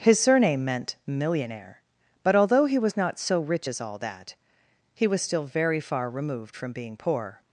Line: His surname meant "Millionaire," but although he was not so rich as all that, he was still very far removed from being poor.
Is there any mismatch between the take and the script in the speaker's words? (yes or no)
no